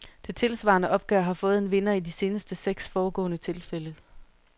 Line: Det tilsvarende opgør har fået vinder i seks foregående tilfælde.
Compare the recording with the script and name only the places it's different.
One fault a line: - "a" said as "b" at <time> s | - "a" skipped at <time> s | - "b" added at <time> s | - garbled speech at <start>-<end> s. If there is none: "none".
- "en" added at 1.6 s
- "de seneste" added at 2.0 s